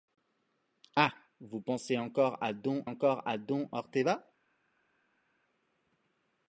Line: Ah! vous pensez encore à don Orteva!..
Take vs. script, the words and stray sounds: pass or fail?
fail